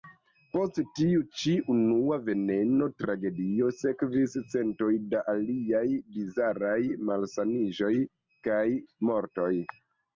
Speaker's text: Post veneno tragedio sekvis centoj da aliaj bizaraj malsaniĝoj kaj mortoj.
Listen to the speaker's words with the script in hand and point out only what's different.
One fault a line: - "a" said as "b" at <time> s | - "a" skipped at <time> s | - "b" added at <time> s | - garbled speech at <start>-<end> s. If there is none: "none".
- "tiu ĉi unua" added at 1.0 s